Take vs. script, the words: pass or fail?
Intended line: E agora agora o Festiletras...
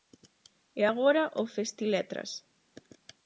fail